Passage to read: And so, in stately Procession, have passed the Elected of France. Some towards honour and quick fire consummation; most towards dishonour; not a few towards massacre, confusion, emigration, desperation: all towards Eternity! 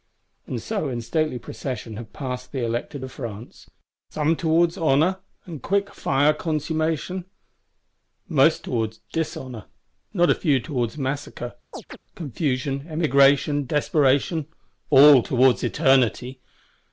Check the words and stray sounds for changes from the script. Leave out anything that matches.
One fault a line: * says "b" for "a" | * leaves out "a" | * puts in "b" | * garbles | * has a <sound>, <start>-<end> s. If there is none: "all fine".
* has a chirp, 11.7-12.0 s